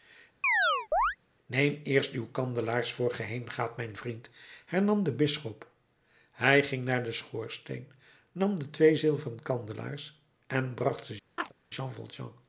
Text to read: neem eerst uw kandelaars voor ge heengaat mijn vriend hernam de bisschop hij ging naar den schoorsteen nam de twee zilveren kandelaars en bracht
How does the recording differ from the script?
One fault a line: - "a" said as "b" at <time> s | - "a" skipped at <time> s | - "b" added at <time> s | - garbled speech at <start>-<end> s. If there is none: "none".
none